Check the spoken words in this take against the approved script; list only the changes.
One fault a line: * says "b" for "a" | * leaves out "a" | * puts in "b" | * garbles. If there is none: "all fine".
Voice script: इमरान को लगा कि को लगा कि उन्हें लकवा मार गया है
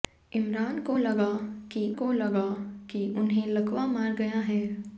all fine